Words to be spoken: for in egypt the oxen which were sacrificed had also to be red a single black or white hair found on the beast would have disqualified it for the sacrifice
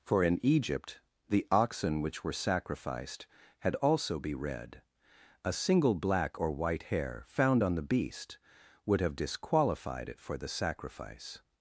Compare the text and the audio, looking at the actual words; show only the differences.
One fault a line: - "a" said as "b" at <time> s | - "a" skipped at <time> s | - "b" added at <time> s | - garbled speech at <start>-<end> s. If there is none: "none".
- "to" skipped at 4.2 s